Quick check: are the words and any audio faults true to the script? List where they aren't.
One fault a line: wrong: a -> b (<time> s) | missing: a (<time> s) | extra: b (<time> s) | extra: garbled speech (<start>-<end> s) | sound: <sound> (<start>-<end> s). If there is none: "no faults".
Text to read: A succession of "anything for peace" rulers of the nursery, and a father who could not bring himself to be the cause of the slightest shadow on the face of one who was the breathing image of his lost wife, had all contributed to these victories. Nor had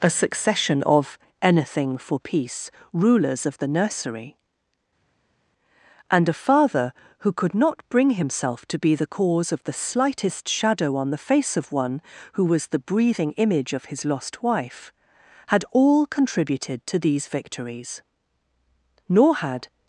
no faults